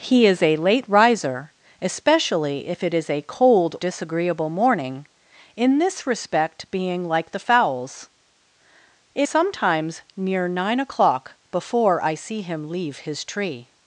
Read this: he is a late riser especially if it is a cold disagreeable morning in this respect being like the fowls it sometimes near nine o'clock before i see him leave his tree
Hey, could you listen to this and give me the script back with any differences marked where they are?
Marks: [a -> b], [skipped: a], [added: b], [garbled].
he is a late riser especially if it is a cold disagreeable morning in this respect being like the fowls it sometimes near nine o'clock before i see him leave his tree